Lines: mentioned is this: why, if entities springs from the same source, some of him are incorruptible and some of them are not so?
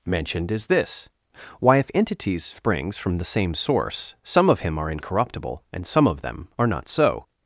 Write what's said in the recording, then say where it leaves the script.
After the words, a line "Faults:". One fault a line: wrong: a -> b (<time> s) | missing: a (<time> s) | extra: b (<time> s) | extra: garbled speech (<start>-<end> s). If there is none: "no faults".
mentioned is this: why, if entities springs from the same source, some of him are incorruptible and some of them are not so?
Faults:
no faults